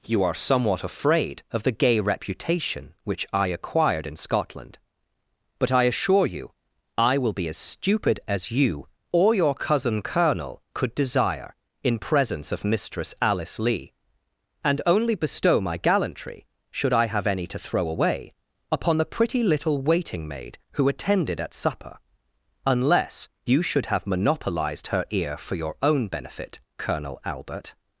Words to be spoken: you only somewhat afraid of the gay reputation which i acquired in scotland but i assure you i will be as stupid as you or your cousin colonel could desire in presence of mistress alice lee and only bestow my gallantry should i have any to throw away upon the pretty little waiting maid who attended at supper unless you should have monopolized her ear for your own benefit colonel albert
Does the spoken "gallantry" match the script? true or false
true